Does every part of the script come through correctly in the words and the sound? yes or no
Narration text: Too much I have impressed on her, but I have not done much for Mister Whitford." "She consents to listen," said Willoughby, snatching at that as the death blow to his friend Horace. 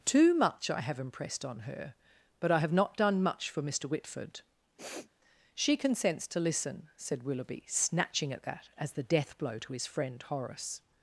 no